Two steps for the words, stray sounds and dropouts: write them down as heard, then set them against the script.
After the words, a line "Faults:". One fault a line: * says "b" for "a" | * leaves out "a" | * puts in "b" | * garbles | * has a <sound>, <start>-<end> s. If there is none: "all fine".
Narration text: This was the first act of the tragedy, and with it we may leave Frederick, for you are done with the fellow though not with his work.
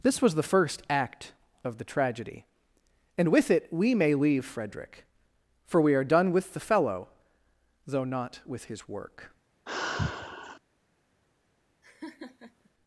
This was the first act of the tragedy, and with it we may leave Frederick, for we are done with the fellow though not with his work.
Faults:
* says "we" for "you"
* has a sigh, 9.7-10.6 s
* has a laugh, 11.8-12.7 s